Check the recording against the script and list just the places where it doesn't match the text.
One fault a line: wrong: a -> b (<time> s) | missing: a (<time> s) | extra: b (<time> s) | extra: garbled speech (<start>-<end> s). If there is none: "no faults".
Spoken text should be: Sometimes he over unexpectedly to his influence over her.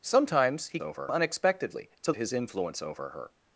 no faults